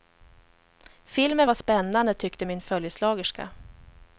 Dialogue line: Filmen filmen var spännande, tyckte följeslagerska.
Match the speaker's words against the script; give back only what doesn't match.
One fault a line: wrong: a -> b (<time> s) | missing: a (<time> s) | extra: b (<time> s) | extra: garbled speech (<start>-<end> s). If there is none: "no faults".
missing: filmen (1.5 s)
extra: min (2.4 s)